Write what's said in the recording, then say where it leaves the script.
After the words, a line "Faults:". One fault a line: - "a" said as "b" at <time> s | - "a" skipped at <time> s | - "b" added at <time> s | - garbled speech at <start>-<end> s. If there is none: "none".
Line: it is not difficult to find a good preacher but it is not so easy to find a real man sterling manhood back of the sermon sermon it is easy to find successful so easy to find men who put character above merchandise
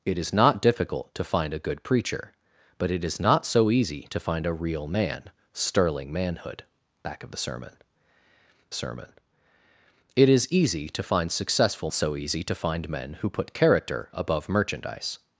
it is not difficult to find a good preacher but it is not so easy to find a real man sterling manhood back of the sermon sermon it is easy to find successful so easy to find men who put character above merchandise
Faults:
none